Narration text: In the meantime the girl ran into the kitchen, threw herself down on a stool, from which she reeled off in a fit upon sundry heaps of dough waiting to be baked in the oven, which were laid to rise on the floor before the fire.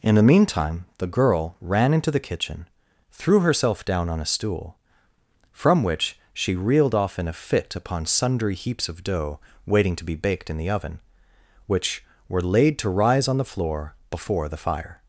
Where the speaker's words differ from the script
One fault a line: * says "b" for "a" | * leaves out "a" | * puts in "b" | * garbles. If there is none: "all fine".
all fine